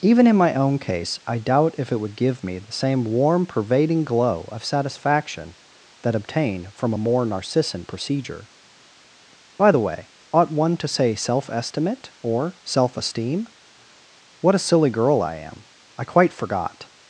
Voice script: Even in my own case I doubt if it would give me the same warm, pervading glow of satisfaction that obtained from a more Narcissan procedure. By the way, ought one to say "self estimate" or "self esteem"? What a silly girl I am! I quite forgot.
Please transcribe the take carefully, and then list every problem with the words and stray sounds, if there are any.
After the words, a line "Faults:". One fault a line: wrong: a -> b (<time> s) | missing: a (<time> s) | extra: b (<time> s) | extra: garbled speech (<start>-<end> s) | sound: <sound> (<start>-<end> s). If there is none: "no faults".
Even in my own case I doubt if it would give me the same warm, pervading glow of satisfaction that obtained from a more Narcissan procedure. By the way, ought one to say "self estimate" or "self esteem"? What a silly girl I am! I quite forgot.
Faults:
no faults